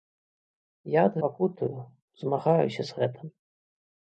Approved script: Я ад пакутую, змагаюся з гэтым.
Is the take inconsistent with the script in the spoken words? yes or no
no